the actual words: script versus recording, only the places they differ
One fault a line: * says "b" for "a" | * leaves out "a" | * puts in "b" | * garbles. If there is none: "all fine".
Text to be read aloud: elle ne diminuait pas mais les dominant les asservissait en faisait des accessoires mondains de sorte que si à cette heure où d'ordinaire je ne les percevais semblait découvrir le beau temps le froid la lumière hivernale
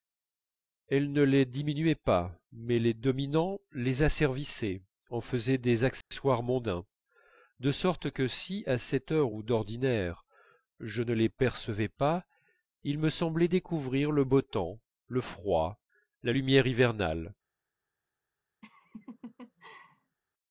* puts in "les"
* puts in "pas il me"